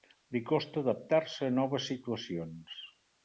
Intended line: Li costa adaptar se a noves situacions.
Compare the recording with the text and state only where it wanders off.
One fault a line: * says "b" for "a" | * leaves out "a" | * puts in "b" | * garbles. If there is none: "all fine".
all fine